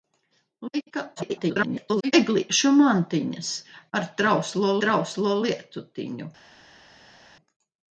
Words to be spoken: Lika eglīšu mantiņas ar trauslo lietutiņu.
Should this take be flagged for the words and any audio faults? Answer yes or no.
yes